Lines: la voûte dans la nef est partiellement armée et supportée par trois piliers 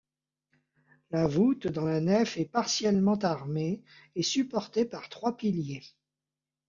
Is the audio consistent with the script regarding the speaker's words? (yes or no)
yes